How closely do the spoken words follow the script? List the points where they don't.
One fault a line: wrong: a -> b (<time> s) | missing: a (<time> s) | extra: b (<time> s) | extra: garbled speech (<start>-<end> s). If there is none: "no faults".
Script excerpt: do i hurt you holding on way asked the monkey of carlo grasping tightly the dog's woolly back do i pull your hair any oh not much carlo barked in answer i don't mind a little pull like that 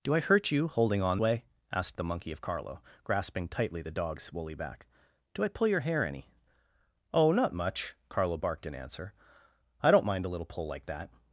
no faults